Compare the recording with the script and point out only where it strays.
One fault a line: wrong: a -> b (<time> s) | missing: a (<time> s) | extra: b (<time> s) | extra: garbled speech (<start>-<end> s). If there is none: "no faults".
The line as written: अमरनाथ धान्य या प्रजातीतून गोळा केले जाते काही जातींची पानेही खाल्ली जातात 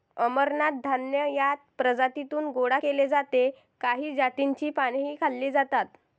no faults